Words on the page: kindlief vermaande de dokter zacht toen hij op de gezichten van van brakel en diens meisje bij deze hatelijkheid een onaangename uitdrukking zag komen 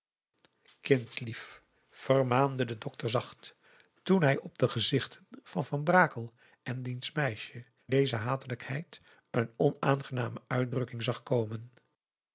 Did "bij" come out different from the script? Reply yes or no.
yes